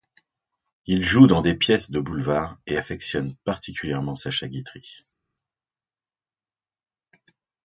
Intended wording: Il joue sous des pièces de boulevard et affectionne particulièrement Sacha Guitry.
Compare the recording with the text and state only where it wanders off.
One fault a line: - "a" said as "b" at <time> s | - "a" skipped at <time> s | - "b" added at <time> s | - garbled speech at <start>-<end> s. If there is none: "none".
- "sous" said as "dans" at 1.3 s